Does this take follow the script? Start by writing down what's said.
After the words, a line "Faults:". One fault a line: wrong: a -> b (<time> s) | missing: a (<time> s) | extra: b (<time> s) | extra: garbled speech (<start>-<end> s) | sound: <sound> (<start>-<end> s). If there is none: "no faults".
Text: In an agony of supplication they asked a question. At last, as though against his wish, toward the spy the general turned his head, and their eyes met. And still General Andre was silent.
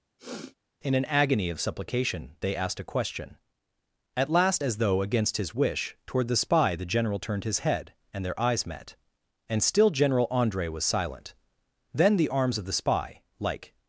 In an agony of supplication they asked a question. At last, as though against his wish, toward the spy the general turned his head, and their eyes met. And still General Andre was silent. Then the arms of the spy, like
Faults:
sound: sniff (0.2-0.6 s)
extra: Then the arms of the spy like (11.9 s)